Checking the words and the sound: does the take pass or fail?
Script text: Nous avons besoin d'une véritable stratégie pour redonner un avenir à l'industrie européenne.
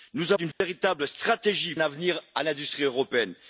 fail